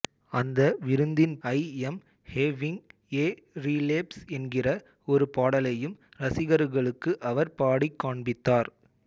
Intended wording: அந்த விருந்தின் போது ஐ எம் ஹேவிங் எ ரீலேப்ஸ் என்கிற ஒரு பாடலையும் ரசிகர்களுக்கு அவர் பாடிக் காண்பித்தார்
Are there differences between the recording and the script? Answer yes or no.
yes